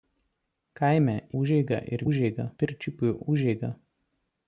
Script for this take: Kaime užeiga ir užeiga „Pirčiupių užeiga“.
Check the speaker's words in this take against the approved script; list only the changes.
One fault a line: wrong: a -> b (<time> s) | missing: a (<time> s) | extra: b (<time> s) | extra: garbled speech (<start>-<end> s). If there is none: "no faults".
no faults